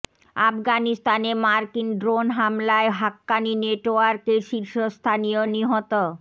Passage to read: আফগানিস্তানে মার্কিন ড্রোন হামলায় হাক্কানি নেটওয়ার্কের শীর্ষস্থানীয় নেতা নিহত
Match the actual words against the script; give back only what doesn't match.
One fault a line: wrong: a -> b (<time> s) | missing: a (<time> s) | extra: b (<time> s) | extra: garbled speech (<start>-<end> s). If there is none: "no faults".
missing: নেতা (5.4 s)